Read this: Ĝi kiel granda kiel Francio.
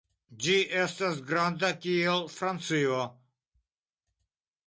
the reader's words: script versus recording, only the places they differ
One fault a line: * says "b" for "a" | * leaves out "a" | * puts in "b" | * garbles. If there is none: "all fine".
* says "estas" for "kiel"